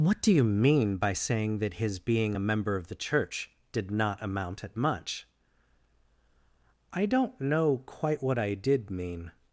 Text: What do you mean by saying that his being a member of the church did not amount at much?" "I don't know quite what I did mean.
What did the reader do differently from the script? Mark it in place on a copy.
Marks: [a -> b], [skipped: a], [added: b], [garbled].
What do you mean by saying that his being a member of the church did not amount at much?" "I don't know quite what I did mean.